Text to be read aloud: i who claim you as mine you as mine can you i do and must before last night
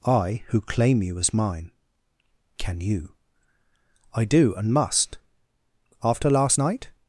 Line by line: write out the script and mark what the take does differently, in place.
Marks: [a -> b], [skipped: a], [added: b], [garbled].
i who claim you as mine [skipped: you as mine] can you i do and must [before -> after] last night